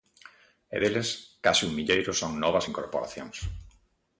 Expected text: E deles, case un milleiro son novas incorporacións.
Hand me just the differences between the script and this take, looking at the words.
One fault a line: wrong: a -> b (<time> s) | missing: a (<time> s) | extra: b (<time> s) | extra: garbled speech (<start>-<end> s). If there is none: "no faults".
no faults